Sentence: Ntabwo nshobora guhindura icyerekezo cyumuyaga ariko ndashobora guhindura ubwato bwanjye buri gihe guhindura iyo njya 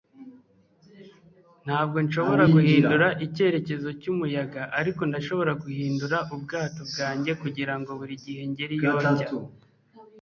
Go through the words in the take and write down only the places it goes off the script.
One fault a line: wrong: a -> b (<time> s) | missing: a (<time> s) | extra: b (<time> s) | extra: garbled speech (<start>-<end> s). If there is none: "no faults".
extra: kugirango (7.4 s)
wrong: guhindura -> ngere (8.5 s)